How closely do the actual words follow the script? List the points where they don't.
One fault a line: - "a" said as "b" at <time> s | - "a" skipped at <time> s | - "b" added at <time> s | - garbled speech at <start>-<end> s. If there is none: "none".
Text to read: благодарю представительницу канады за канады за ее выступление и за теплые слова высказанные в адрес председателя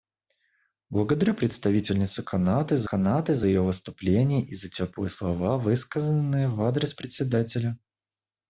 none